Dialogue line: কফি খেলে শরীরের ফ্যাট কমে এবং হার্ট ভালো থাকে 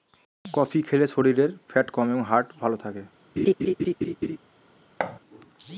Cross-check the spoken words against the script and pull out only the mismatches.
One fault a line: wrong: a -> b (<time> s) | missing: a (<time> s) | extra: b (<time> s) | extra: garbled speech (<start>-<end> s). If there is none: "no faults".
no faults